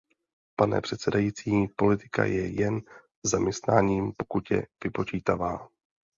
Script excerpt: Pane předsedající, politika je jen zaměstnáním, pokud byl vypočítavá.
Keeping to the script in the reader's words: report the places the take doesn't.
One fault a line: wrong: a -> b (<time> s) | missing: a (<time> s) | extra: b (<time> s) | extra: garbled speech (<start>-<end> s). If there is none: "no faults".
wrong: byl -> je (4.5 s)